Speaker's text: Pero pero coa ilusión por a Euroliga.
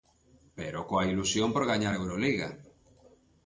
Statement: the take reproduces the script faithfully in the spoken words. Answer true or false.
false